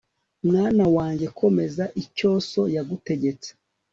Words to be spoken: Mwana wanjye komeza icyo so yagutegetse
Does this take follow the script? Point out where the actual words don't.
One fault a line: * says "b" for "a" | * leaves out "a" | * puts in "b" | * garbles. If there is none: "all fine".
all fine